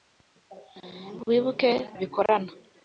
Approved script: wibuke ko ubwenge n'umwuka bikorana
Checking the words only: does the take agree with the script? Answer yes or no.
no